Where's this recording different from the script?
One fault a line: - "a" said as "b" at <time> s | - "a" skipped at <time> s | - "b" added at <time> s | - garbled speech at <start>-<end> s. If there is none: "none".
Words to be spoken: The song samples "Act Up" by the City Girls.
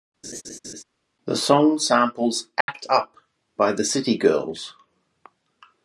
none